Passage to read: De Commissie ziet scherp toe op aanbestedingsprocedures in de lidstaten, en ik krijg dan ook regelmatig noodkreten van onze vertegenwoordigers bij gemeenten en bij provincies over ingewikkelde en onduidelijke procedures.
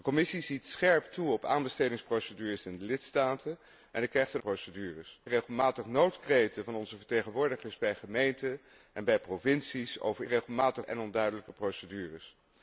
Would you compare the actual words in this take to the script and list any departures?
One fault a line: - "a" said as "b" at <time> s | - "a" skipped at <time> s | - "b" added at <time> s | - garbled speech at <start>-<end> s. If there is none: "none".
- "ook" said as "procedures" at 4.4 s
- "ingewikkelde" said as "regelmatig" at 10.2 s